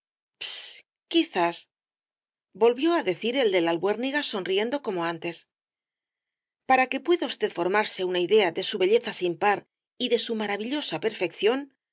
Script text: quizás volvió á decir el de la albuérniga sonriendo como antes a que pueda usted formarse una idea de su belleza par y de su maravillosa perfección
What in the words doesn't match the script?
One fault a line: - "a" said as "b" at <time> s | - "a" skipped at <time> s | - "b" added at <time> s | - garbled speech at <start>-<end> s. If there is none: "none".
- "a" said as "para" at 6.7 s
- "sin" added at 9.1 s